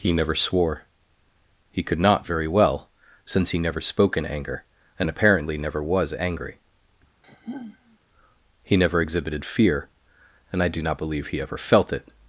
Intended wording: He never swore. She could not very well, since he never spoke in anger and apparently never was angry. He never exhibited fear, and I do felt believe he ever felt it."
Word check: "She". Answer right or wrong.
wrong